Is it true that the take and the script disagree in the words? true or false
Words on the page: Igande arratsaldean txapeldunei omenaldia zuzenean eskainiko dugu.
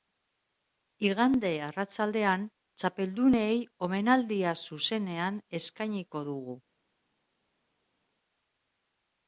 false